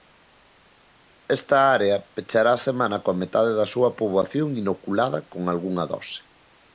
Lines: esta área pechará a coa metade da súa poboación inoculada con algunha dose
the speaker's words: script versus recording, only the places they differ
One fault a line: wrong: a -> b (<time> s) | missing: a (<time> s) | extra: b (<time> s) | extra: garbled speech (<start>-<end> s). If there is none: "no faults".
extra: semana (2.7 s)